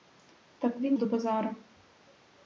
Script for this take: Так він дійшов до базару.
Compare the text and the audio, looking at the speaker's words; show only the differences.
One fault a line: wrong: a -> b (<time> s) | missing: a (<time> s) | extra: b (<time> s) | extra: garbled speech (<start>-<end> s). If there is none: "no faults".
missing: дійшов (1.0 s)